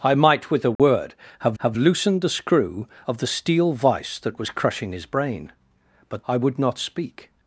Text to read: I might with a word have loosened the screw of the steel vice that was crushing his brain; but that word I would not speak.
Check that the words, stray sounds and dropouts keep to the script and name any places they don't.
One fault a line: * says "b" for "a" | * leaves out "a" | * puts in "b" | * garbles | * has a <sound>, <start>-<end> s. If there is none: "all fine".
* has a dropout, 0.8-0.8 s
* puts in "have"
* leaves out "that word"